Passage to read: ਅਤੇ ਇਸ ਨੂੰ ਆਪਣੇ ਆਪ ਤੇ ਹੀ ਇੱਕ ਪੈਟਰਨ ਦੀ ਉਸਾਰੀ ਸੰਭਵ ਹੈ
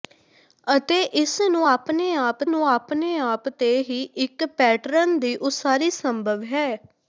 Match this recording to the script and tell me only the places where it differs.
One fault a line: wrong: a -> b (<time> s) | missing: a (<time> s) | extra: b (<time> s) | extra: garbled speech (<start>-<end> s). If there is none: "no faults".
extra: ਨੂੰ ਆਪਣੇ ਆਪ (2.5 s)